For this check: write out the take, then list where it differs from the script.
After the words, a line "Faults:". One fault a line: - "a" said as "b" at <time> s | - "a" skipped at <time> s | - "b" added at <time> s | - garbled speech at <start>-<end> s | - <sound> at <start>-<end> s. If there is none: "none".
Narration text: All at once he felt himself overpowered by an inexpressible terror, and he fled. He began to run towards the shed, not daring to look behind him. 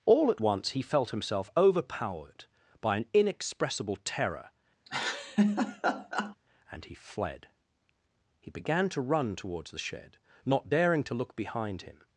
All at once he felt himself overpowered by an inexpressible terror, and he fled. He began to run towards the shed, not daring to look behind him.
Faults:
- laugh at 4.9-6.4 s